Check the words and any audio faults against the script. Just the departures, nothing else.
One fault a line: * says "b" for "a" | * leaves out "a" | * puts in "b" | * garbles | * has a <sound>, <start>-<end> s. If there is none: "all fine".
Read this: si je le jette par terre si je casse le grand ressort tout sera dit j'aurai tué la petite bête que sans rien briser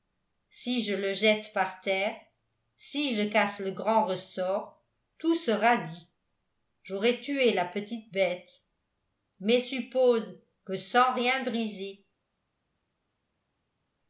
* puts in "mais suppose"